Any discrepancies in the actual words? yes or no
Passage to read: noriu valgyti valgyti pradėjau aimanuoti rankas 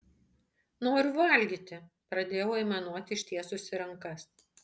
yes